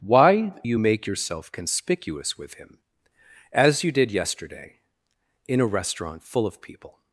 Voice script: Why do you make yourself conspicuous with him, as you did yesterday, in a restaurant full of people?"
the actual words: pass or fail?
fail